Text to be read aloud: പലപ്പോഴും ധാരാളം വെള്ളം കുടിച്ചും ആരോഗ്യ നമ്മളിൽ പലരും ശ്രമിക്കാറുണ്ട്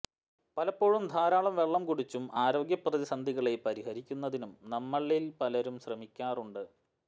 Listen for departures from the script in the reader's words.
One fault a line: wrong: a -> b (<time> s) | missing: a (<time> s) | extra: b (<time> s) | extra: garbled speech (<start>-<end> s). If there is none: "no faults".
extra: പ്രതിസന്ധികളെ പരിഹരിക്കുന്നതിനും (2.8 s)